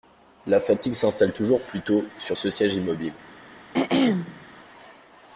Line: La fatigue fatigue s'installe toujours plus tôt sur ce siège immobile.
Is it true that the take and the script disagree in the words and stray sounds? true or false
true